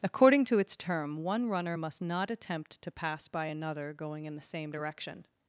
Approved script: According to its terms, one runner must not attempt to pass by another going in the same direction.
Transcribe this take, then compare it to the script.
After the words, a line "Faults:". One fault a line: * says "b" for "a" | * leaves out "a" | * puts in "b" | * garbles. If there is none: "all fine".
According to its term, one runner must not attempt to pass by another going in the same direction.
Faults:
* says "term" for "terms"